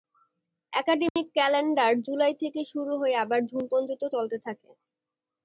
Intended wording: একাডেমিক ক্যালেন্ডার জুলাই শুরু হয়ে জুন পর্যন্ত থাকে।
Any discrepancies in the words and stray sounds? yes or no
yes